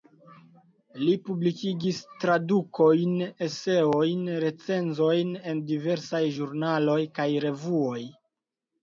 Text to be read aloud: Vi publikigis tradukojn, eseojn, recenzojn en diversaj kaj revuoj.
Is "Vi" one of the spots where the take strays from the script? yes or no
yes